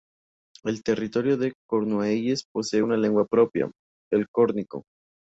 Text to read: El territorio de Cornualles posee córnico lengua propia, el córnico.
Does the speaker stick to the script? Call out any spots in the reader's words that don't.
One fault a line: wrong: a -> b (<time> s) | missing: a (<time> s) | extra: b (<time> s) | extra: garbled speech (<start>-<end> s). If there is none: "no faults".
wrong: córnico -> una (2.8 s)